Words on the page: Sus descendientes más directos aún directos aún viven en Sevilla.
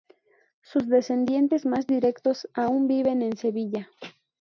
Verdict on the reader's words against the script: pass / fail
fail